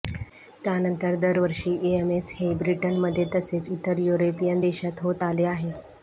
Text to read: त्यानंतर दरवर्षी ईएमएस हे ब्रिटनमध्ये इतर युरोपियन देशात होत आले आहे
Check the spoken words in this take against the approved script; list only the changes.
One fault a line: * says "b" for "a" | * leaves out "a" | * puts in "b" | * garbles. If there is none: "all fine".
* puts in "तसेच"